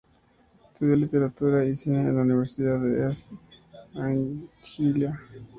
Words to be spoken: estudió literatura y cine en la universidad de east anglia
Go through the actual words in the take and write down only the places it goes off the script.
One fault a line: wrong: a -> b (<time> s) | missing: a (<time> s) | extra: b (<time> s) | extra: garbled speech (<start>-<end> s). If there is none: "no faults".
no faults